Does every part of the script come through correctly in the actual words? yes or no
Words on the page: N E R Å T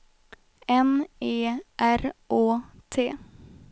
yes